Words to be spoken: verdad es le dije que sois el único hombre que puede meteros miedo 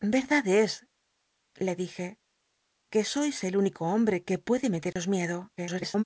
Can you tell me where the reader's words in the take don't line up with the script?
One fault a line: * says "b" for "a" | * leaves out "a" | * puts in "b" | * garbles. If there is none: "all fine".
* garbles